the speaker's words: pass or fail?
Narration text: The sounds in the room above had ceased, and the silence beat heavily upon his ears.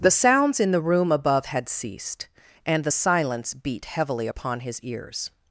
pass